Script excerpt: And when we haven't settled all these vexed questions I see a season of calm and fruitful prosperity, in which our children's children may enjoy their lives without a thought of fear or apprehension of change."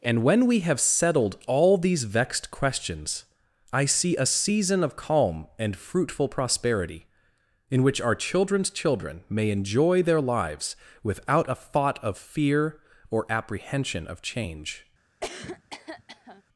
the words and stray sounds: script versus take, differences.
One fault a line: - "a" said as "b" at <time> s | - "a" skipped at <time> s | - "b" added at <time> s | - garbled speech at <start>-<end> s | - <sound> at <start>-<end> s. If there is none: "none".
- "haven't" said as "have" at 0.6 s
- cough at 15.2-16.4 s